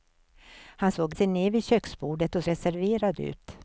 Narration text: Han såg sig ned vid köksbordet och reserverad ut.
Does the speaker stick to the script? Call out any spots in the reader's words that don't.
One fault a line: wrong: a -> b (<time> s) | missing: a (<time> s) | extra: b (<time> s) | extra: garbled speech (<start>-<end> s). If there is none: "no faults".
no faults